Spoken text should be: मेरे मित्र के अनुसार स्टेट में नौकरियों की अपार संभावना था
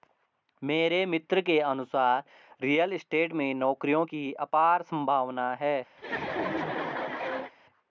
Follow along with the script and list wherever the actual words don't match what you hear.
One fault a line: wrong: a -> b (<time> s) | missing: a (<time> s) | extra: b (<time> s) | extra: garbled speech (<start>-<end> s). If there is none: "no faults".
extra: रियल (2.6 s)
wrong: था -> है (5.5 s)